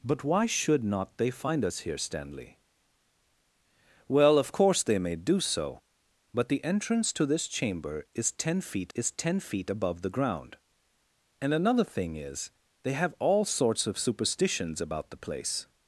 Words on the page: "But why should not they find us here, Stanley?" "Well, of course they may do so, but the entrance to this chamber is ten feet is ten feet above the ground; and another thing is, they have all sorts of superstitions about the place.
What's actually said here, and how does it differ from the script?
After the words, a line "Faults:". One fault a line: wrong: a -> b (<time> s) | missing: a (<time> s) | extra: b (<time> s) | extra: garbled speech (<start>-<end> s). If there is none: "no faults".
"But why should not they find us here, Stanley?" "Well, of course they may do so, but the entrance to this chamber is ten feet is ten feet above the ground; and another thing is, they have all sorts of superstitions about the place.
Faults:
no faults